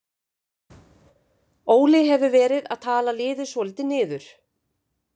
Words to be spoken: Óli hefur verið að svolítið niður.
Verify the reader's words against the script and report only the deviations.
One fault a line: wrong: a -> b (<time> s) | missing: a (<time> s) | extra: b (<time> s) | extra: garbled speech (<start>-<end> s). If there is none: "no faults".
extra: tala liðið (2.9 s)